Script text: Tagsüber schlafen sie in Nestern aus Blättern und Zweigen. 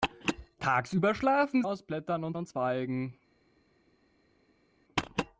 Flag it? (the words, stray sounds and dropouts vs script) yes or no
yes